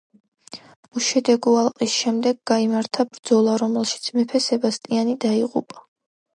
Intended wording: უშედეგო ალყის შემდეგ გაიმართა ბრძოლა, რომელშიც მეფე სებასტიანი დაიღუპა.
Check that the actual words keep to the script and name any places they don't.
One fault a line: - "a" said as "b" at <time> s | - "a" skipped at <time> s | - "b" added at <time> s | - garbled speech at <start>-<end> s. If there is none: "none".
none